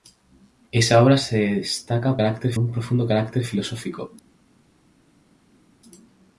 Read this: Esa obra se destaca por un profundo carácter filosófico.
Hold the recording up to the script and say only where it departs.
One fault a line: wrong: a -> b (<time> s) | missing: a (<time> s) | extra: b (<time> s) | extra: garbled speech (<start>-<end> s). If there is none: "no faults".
wrong: por -> carácter (2.2 s)